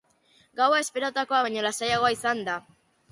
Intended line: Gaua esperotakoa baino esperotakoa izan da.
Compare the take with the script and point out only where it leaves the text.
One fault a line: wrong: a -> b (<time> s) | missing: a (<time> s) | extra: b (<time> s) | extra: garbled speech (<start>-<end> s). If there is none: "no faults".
wrong: esperotakoa -> lasaiagoa (1.7 s)